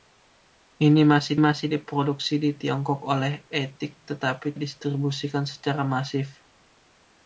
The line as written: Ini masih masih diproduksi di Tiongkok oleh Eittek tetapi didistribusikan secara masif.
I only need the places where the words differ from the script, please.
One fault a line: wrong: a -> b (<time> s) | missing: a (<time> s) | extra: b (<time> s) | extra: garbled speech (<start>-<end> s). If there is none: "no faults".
no faults